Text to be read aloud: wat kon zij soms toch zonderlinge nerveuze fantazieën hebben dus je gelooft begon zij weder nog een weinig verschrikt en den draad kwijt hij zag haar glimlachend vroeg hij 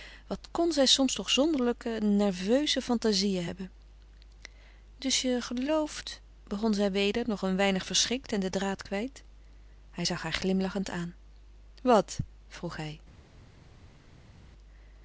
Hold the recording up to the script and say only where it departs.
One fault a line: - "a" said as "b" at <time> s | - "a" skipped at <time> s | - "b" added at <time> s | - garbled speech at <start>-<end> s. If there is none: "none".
- "aan wat" added at 10.9 s